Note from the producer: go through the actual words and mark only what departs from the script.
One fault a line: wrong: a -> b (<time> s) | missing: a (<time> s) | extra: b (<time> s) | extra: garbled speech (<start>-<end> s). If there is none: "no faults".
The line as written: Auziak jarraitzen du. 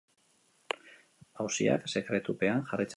extra: sekretupean (1.9 s)